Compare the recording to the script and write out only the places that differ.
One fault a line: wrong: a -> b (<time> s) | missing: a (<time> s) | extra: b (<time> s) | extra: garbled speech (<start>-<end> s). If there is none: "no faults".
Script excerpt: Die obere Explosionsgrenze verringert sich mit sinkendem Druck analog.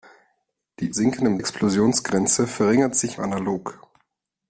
wrong: obere -> sinkendem (0.9 s)
missing: mit sinkendem Druck (3.2 s)